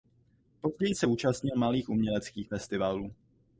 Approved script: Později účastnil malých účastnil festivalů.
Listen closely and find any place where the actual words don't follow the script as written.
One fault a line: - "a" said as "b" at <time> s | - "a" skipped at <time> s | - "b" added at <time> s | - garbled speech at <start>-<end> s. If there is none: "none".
- "se" added at 0.9 s
- "účastnil" said as "uměleckých" at 1.9 s